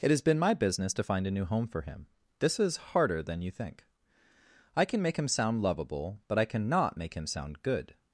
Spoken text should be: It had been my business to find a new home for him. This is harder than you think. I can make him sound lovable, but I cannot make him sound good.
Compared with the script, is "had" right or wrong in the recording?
wrong